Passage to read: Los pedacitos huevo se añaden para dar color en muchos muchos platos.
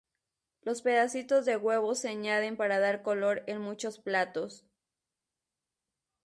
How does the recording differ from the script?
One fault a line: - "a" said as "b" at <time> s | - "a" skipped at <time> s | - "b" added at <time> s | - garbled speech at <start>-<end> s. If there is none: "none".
- "de" added at 1.4 s
- "muchos" skipped at 4.0 s